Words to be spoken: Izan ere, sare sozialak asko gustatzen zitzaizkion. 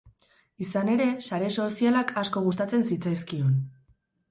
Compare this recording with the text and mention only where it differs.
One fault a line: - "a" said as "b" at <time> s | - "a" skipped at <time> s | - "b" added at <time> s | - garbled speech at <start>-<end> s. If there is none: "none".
none